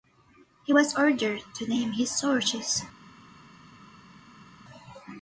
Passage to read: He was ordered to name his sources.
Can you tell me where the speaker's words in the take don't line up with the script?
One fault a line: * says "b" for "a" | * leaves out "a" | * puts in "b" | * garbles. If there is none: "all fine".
all fine